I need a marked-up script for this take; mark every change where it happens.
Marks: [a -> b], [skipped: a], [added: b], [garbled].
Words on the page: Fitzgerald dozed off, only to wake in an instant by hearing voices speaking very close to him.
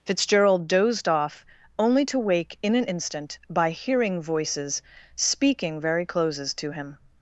Fitzgerald dozed off, only to wake in an instant by hearing voices speaking very [close -> closes] to him.